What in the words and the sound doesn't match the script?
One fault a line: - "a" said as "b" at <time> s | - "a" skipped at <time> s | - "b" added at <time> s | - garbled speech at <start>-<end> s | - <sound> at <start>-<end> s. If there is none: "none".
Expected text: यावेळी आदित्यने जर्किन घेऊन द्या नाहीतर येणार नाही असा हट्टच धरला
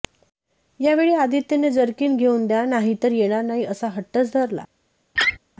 - laugh at 5.1-5.4 s